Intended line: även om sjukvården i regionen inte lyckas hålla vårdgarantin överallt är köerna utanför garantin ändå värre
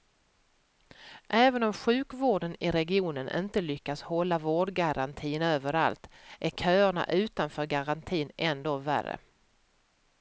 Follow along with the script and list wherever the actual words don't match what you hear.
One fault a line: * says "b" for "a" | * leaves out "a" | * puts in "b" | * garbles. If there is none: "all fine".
all fine